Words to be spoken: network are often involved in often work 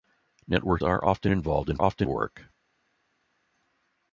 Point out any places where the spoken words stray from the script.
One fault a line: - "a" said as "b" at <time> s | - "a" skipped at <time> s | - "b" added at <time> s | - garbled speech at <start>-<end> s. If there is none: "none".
none